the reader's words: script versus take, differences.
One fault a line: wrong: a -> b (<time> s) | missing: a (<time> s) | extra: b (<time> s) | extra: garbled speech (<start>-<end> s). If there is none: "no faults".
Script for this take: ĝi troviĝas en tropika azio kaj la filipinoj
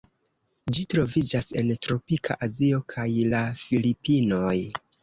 no faults